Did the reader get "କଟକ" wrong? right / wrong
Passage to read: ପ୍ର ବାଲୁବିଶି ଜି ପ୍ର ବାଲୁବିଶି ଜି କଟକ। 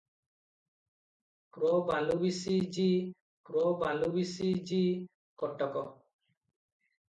right